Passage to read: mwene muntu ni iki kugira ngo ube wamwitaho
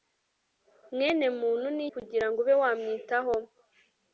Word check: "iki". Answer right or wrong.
wrong